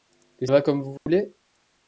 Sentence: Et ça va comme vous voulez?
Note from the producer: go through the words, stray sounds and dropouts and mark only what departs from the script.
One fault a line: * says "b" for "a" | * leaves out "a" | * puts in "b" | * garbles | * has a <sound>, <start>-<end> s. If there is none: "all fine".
* leaves out "ça"
* has a dropout, 1.0-1.1 s